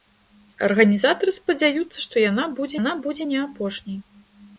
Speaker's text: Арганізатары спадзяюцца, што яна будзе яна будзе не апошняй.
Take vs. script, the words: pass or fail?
pass